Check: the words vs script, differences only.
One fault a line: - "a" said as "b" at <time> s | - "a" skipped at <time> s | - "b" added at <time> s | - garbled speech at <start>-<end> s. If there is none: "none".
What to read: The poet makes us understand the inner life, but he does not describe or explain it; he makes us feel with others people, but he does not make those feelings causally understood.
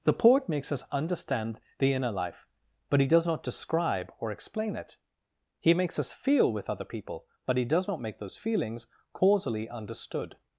- "others" said as "other" at 6.7 s